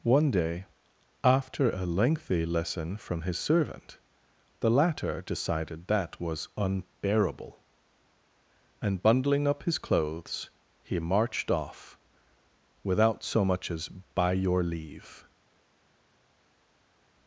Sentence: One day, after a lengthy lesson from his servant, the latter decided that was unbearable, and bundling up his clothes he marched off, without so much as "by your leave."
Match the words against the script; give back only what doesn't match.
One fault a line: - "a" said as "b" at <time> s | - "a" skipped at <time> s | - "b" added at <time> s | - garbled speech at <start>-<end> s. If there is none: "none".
none